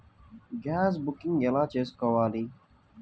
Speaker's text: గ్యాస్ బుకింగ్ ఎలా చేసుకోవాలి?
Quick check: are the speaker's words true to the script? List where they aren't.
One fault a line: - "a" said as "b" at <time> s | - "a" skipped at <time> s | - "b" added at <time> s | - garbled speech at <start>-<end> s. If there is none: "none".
none